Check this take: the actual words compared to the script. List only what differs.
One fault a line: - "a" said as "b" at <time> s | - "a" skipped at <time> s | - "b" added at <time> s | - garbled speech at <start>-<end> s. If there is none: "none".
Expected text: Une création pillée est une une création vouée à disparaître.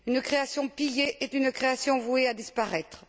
- "une" skipped at 1.5 s